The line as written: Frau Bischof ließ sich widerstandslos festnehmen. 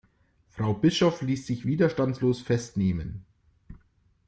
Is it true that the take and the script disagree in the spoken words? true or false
false